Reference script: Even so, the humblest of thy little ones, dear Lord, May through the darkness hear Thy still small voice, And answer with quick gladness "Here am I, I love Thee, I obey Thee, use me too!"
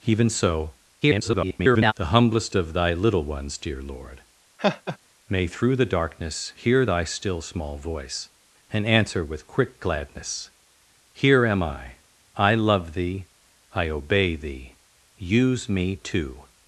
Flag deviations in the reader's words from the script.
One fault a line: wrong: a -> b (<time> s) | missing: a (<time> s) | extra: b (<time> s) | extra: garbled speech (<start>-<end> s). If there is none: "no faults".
extra: garbled speech (1.0-1.9 s)